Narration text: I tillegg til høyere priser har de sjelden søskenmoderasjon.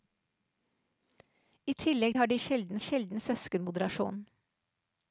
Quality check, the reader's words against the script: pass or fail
fail